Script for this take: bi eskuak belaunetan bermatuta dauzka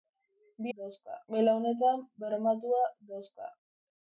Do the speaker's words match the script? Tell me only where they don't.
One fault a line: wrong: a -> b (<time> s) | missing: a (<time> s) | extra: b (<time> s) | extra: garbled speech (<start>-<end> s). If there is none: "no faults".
wrong: eskuak -> dauzka (0.8 s)